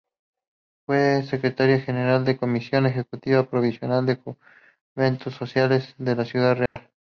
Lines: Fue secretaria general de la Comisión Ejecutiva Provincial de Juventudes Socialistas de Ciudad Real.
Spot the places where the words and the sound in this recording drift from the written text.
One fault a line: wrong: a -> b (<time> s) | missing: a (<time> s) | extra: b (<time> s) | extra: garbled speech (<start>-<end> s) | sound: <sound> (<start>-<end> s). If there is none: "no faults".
sound: dropout (6.7-6.8 s)